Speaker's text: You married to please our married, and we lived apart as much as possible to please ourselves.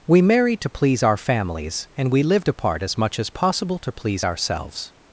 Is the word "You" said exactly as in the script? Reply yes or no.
no